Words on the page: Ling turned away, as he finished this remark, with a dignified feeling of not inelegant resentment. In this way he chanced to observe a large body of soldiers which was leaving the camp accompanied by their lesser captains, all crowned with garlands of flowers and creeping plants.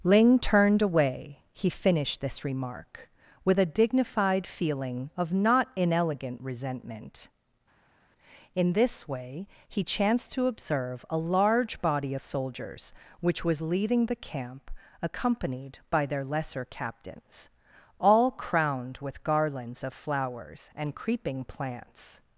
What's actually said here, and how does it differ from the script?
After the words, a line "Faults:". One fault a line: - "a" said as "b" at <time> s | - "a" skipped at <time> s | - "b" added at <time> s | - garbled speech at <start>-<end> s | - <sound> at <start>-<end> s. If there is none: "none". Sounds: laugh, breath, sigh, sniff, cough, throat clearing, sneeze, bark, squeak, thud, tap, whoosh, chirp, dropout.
Ling turned away, he finished this remark, with a dignified feeling of not inelegant resentment. In this way he chanced to observe a large body of soldiers which was leaving the camp accompanied by their lesser captains, all crowned with garlands of flowers and creeping plants.
Faults:
- "as" skipped at 1.4 s